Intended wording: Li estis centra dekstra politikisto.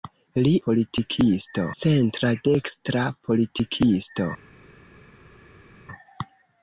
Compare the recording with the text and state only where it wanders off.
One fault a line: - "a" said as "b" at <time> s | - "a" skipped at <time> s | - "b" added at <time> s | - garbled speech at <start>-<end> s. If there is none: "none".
- "estis" said as "politikisto" at 0.7 s